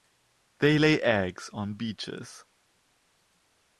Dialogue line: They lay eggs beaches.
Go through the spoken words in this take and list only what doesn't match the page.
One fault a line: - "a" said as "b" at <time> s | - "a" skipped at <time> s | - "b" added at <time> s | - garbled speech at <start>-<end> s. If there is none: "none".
- "on" added at 1.5 s